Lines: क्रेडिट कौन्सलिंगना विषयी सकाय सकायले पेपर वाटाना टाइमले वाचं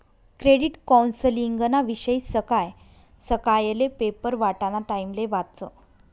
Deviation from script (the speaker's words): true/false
false